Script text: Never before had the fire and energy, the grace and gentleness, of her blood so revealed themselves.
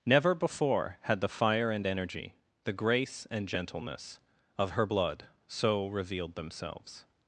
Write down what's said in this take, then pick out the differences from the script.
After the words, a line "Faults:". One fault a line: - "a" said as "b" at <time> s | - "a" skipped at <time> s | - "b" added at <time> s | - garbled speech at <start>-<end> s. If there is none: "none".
Never before had the fire and energy, the grace and gentleness, of her blood so revealed themselves.
Faults:
none